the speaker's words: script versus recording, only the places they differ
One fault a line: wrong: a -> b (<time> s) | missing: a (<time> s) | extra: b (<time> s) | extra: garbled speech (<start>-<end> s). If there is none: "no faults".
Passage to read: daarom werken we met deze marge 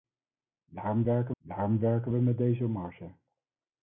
extra: daarom werken (1.4 s)